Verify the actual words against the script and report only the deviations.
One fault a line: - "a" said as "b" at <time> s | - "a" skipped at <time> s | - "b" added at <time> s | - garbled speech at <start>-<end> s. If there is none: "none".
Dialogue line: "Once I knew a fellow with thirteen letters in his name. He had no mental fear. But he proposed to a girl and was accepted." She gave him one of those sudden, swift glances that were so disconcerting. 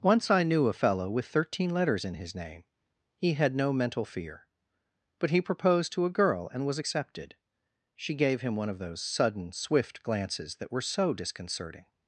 none